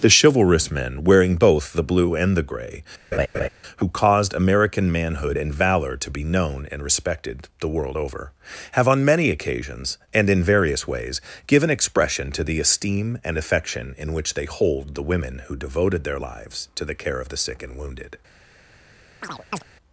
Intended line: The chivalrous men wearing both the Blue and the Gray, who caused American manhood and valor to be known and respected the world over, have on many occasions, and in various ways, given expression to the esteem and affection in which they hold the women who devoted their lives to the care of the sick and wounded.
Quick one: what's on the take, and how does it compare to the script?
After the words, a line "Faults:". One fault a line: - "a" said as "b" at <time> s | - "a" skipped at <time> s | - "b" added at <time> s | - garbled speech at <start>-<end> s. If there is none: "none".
The chivalrous men wearing both the Blue and the Gray, who caused American manhood and valor to be known and respected the world over, have on many occasions, and in various ways, given expression to the esteem and affection in which they hold the women who devoted their lives to the care of the sick and wounded.
Faults:
none